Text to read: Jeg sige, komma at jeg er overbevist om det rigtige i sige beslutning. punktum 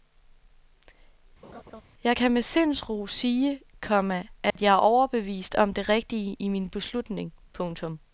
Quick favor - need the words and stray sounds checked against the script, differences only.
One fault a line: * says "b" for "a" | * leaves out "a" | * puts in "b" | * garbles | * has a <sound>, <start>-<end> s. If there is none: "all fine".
* has a laugh, 1.4-1.8 s
* puts in "kan med sindsro"
* has a dropout, 4.5-4.6 s
* says "min" for "sige"